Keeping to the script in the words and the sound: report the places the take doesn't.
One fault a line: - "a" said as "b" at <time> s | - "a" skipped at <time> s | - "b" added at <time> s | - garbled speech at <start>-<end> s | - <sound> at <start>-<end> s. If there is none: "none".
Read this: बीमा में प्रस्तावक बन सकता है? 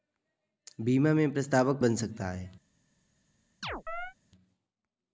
- chirp at 3.6-4.1 s